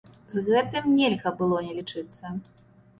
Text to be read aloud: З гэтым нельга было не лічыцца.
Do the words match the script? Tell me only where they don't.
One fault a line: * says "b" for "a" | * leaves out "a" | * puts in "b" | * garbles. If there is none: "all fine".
all fine